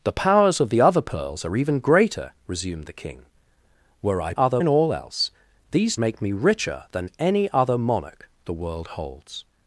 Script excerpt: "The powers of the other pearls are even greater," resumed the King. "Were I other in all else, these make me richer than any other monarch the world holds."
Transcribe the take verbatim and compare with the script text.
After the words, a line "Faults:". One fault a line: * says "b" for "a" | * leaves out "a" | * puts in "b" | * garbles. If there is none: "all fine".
"The powers of the other pearls are even greater," resumed the King. "Were I other in all else, these make me richer than any other monarch the world holds."
Faults:
all fine